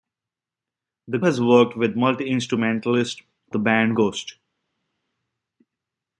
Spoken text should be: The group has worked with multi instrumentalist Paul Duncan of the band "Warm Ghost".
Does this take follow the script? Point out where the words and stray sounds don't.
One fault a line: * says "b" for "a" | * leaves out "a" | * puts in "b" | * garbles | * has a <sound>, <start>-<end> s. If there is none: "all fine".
* leaves out "group"
* leaves out "Paul Duncan of"
* leaves out "Warm"